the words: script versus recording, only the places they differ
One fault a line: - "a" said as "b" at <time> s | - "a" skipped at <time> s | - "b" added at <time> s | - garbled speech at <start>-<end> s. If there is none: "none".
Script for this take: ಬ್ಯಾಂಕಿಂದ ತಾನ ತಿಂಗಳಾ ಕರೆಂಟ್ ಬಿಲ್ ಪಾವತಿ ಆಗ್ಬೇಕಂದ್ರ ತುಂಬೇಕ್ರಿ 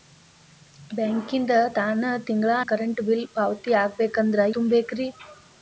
none